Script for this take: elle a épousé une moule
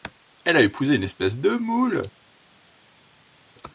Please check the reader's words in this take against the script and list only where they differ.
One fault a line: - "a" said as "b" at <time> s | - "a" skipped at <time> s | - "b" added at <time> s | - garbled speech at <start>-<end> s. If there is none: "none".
- "espèce de" added at 1.0 s